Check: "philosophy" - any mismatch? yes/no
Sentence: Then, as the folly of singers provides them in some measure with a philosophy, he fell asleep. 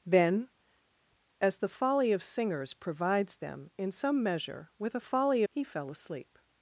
yes